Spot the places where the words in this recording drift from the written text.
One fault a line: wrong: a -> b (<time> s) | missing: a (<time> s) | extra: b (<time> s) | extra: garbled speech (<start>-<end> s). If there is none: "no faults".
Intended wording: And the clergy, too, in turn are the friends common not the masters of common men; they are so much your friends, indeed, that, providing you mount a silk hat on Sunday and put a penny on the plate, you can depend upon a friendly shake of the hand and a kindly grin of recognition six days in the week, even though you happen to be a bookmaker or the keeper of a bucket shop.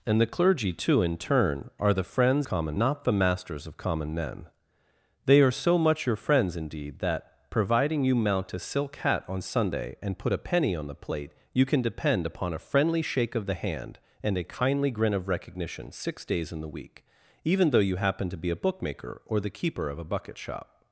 no faults